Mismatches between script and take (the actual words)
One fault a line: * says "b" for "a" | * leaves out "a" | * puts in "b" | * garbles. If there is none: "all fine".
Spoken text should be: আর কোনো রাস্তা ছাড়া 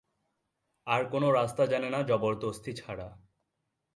* puts in "জানে না জবরদস্তি"